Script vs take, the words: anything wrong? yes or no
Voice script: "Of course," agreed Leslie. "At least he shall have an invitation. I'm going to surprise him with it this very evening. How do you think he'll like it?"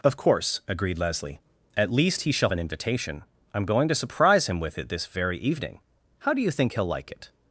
yes